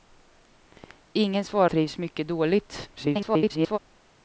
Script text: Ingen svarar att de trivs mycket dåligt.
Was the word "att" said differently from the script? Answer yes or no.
yes